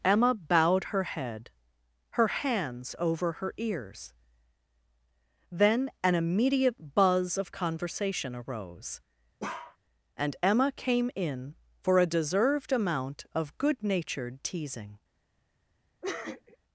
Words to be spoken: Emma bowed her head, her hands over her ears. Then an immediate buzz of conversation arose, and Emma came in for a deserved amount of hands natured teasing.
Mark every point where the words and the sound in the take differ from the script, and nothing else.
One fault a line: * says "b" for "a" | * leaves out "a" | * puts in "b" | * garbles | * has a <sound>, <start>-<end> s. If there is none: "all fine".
* has a bark, 9.4-9.8 s
* says "good" for "hands"
* has a sniff, 16.0-16.6 s